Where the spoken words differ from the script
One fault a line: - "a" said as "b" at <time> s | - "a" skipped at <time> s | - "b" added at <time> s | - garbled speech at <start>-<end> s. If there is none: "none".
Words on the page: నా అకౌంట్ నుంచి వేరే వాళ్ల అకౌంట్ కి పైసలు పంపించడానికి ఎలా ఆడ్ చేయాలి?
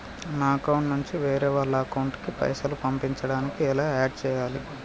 none